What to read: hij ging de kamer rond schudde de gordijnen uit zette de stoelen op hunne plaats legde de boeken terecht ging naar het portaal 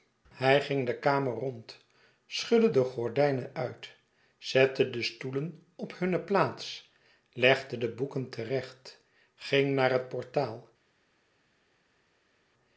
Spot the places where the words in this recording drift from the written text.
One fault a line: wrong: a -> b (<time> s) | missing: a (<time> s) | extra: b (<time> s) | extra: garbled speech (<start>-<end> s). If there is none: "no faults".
no faults